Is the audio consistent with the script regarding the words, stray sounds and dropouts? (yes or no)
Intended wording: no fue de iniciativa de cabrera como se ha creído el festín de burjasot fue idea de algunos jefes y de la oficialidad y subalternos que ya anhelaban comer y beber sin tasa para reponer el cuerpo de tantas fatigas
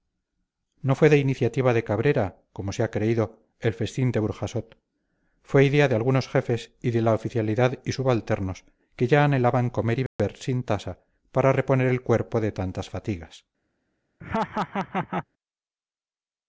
no